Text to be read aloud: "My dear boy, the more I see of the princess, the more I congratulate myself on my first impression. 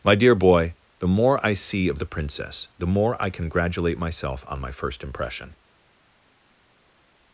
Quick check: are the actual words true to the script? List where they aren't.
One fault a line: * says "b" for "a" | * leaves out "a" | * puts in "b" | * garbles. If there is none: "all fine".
all fine